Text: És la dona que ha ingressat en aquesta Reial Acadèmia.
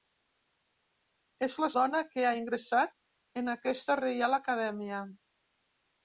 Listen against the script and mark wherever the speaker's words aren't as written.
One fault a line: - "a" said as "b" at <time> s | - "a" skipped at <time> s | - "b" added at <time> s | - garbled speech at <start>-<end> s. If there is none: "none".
none